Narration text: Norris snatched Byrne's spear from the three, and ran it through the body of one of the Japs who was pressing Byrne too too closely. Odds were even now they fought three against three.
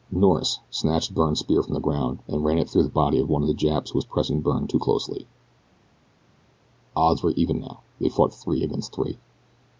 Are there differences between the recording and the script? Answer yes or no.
yes